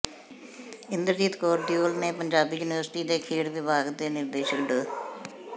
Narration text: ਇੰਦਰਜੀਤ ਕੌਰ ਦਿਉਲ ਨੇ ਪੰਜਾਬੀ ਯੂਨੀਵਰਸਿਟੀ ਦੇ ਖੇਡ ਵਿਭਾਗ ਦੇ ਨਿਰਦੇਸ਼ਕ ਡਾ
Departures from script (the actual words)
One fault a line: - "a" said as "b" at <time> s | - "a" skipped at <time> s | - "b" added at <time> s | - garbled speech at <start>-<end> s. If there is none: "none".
none